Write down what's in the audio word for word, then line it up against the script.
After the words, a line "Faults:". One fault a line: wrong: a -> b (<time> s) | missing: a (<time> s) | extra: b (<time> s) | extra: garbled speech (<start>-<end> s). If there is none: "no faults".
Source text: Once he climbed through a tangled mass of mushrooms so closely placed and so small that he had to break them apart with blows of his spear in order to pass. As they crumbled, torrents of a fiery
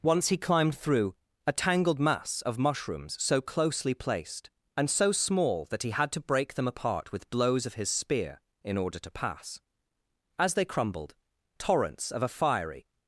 Once he climbed through a tangled mass of mushrooms so closely placed and so small that he had to break them apart with blows of his spear in order to pass. As they crumbled, torrents of a fiery
Faults:
no faults